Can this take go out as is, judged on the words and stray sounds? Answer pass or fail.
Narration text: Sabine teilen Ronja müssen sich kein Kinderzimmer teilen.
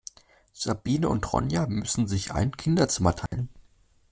fail